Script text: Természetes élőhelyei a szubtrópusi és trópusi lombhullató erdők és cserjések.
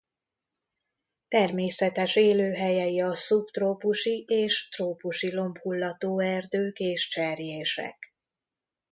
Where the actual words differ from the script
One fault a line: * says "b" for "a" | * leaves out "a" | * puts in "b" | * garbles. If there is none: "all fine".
all fine